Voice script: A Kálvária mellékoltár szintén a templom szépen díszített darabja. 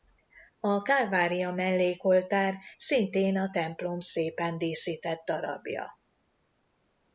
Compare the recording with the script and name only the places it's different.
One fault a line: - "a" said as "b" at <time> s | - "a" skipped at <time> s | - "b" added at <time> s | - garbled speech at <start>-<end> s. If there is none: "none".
none